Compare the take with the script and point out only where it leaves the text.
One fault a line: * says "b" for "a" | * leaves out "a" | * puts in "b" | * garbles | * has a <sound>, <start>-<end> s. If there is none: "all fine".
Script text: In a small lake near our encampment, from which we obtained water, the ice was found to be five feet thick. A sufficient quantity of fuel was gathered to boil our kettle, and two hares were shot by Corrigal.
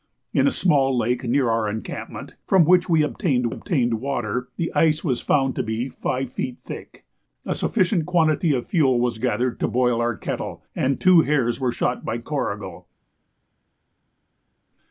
* puts in "obtained"